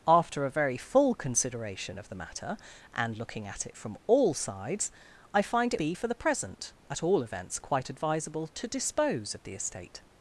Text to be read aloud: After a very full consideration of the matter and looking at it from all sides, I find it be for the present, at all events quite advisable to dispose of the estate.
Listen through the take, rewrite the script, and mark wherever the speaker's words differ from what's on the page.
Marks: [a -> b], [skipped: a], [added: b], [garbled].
After a very full consideration of the matter and looking at it from all sides, I find it be for the present, at all events quite advisable to dispose of the estate.